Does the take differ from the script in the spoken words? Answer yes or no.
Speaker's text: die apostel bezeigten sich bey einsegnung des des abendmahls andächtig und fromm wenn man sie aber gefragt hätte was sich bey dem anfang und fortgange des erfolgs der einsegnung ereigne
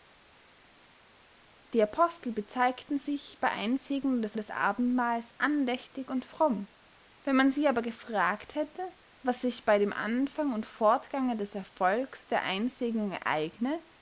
no